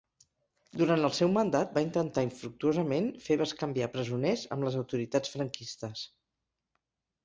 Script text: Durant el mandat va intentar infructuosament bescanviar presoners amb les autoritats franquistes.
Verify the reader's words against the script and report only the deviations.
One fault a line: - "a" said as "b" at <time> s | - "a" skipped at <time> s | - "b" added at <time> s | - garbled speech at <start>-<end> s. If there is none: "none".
- "seu" added at 1.2 s
- "fer" added at 3.2 s